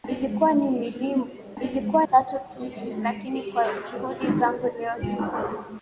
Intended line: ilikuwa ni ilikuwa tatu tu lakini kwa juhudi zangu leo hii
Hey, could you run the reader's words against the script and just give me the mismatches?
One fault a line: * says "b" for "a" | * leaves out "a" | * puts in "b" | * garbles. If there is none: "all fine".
all fine